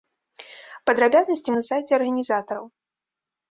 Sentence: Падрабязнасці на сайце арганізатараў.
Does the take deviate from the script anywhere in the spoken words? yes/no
no